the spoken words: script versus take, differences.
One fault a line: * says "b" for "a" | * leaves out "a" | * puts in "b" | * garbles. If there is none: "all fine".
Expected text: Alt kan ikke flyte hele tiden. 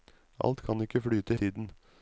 * leaves out "hele"